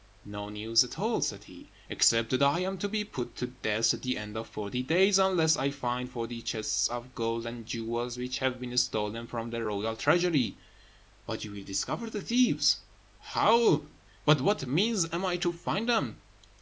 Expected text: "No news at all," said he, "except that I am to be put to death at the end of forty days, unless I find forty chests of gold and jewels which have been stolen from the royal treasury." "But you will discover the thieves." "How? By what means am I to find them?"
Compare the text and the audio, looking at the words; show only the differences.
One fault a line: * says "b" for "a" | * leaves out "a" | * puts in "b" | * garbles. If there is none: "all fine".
all fine